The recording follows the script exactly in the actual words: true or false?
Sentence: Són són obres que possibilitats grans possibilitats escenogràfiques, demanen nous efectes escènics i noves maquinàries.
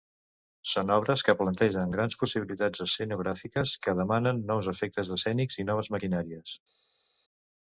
false